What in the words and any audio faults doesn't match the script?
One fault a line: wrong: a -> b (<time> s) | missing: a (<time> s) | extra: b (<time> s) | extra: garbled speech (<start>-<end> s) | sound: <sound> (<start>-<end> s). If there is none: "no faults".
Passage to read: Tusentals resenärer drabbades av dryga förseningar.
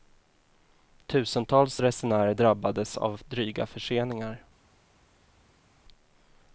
no faults